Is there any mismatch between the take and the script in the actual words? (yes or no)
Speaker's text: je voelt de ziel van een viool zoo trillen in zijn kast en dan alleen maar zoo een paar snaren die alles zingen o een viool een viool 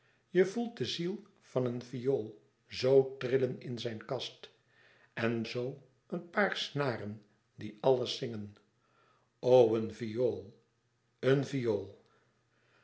yes